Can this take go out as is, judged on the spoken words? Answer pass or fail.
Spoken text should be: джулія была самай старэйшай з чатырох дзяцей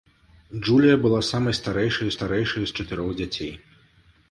fail